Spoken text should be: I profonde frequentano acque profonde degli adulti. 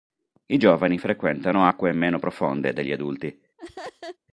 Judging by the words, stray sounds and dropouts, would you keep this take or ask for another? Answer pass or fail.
fail